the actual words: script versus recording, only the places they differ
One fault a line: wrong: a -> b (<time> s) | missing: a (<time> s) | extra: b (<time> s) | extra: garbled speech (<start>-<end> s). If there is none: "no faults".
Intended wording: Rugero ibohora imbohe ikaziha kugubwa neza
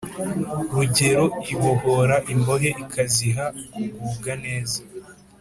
no faults